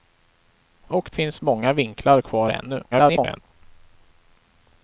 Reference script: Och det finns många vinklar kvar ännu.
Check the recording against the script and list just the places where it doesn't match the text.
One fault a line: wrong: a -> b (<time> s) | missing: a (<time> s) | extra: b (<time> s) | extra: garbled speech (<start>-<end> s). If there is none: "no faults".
missing: det (1.1 s)
extra: garbled speech (2.9-3.4 s)